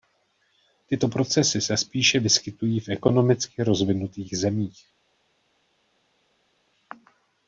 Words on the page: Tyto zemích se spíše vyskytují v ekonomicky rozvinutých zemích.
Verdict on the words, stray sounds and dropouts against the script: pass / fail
fail